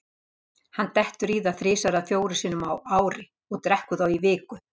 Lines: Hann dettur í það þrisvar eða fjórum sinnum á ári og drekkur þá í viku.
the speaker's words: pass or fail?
pass